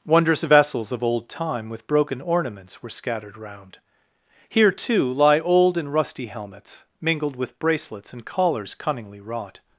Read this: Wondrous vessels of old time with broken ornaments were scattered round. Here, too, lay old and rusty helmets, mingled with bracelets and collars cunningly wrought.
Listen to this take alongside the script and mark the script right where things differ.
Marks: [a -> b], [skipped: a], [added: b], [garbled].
Wondrous vessels of old time with broken ornaments were scattered round. Here, too, [lay -> lie] old and rusty helmets, mingled with bracelets and collars cunningly wrought.